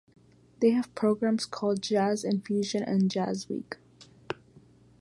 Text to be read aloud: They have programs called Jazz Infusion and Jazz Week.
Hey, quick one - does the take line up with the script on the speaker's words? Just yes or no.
yes